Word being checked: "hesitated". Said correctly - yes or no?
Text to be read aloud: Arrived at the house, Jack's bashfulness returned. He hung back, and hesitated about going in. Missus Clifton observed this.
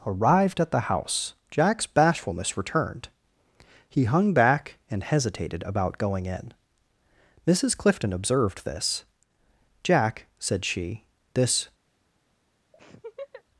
yes